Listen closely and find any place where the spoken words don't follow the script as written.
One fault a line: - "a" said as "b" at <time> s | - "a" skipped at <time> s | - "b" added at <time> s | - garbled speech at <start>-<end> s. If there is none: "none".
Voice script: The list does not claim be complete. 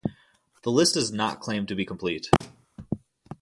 - "to" added at 1.7 s